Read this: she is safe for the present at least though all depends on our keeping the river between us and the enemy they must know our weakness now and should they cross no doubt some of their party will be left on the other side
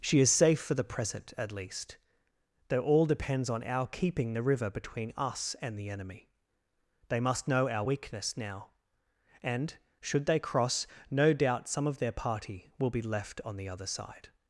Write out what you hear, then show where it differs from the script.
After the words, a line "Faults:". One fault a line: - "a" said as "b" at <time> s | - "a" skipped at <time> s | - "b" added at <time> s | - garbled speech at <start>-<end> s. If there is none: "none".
she is safe for the present at least though all depends on our keeping the river between us and the enemy they must know our weakness now and should they cross no doubt some of their party will be left on the other side
Faults:
none